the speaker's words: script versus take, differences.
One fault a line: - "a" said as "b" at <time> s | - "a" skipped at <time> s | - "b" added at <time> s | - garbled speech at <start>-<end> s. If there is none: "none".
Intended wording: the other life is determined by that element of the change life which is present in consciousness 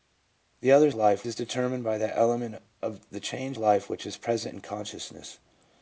none